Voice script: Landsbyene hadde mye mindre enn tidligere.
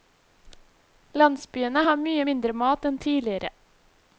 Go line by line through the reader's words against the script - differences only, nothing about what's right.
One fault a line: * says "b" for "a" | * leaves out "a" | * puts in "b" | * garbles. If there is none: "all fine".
* says "har" for "hadde"
* puts in "mat"